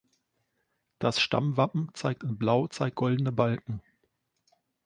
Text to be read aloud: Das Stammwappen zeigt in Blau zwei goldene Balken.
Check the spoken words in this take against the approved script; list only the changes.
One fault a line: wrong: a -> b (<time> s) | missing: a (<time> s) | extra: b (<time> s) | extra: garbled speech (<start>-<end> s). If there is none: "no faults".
wrong: zwei -> zeigt (2.7 s)